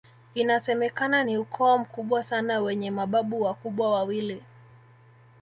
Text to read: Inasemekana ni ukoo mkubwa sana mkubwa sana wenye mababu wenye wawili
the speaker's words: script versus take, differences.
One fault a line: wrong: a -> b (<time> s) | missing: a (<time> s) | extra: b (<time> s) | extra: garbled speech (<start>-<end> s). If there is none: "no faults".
missing: mkubwa sana (2.6 s)
wrong: wenye -> wakubwa (3.4 s)